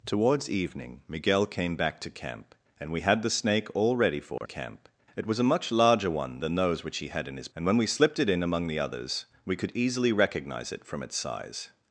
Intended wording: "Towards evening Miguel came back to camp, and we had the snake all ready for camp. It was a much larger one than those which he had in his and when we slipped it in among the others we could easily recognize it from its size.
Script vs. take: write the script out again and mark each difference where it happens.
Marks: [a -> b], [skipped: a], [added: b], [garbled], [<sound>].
"Towards evening Miguel came back to camp, and we had the snake all ready for [dropout] camp. It was a much larger one than those which he had in his and when we slipped it in among the others we could easily recognize it from its size.